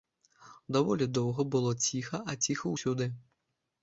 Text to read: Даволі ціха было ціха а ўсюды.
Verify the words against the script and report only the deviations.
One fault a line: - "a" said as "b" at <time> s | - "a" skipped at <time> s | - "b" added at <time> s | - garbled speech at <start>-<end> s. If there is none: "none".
- "ціха" said as "доўга" at 1.2 s
- "ціха" added at 2.5 s